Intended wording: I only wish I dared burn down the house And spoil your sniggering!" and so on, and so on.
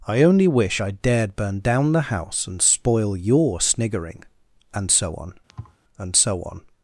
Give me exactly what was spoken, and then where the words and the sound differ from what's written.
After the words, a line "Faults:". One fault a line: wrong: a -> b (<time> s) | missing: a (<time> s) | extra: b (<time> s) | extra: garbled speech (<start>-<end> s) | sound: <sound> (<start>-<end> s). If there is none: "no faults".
I only wish I dared burn down the house And spoil your sniggering!" and so on, and so on.
Faults:
sound: thud (5.5-5.8 s)